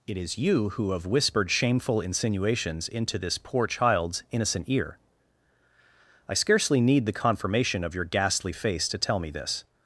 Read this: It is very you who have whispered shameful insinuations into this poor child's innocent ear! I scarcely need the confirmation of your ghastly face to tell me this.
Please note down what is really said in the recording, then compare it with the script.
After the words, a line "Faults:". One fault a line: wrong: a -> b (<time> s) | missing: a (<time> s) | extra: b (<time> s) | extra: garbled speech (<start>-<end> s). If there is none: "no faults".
It is you who have whispered shameful insinuations into this poor child's innocent ear! I scarcely need the confirmation of your ghastly face to tell me this.
Faults:
missing: very (0.4 s)